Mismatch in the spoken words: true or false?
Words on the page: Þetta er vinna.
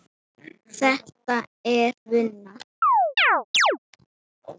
false